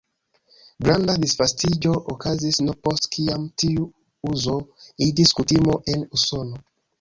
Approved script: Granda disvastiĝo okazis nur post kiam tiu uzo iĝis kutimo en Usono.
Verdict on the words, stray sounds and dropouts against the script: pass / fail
pass